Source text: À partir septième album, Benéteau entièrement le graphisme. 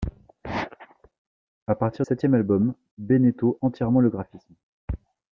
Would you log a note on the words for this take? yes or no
no